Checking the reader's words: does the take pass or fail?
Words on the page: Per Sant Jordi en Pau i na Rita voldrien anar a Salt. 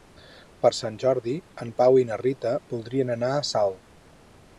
pass